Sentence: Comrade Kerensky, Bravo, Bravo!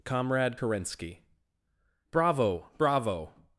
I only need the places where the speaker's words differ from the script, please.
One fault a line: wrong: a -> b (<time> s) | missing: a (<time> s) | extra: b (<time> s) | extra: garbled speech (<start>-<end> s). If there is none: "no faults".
no faults